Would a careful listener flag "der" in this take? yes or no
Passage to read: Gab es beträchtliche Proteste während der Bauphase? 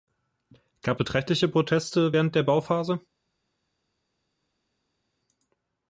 no